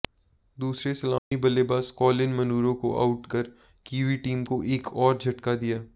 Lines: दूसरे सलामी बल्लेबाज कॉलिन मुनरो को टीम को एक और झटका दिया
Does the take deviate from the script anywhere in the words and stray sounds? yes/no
yes